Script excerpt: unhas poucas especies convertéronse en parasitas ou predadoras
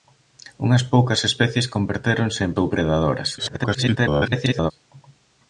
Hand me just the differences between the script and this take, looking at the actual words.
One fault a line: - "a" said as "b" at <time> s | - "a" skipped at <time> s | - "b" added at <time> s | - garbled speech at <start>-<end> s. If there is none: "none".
- "parasitas" skipped at 2.5 s
- garbled speech at 3.4-4.7 s